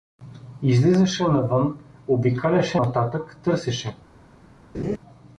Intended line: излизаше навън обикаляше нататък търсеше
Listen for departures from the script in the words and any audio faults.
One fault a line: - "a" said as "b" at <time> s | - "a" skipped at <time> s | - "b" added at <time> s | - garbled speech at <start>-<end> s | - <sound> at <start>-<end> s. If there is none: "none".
- laugh at 4.7-5.0 s